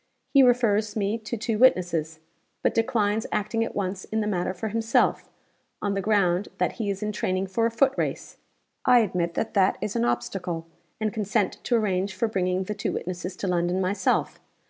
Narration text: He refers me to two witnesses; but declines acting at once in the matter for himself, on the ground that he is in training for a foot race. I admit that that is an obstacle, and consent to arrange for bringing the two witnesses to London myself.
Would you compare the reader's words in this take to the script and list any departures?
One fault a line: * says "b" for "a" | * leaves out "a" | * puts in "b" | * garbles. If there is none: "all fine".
all fine